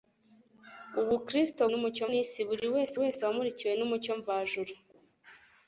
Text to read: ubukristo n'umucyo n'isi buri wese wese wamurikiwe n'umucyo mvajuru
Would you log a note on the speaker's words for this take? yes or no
no